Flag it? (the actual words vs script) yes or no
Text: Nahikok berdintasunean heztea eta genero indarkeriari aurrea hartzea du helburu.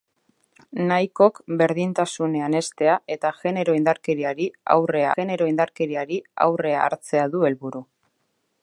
yes